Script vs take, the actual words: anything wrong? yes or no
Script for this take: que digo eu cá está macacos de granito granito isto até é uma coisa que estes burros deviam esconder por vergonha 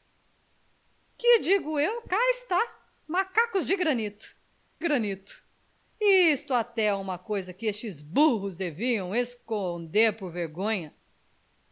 no